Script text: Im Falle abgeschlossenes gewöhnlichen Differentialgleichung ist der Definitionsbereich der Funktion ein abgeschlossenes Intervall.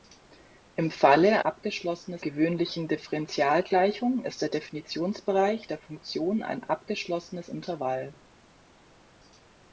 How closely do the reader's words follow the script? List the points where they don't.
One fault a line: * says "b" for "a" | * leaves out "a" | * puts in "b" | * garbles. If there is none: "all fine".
all fine